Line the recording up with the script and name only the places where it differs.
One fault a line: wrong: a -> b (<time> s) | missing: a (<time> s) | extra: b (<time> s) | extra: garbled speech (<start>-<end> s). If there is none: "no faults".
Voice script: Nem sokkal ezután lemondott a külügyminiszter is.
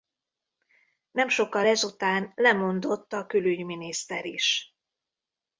no faults